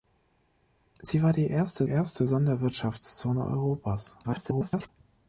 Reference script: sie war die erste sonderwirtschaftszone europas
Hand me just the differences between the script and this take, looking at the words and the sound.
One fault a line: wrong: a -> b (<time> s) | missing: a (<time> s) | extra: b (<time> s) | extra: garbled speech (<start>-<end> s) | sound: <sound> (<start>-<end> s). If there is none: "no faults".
extra: erste (1.8 s)
extra: garbled speech (4.2-4.9 s)